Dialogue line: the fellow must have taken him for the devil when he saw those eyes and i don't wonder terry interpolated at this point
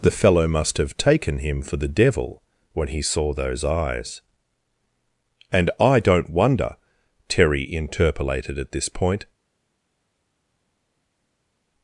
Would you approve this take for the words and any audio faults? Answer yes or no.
yes